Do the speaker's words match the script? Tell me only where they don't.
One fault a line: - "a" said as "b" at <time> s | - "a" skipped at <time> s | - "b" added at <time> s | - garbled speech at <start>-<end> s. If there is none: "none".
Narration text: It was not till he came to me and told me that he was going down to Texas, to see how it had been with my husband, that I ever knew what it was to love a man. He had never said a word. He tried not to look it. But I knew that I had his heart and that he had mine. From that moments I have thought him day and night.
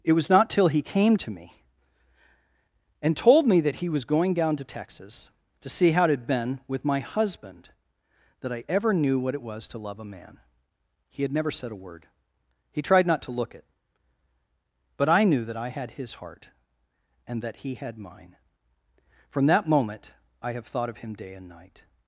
- "moments" said as "moment" at 19.7 s
- "of" added at 20.9 s